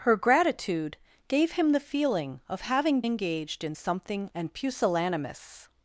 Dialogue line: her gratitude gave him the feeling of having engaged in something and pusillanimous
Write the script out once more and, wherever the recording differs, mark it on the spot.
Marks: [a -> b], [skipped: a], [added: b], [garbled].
her gratitude gave him the feeling of having engaged in something and pusillanimous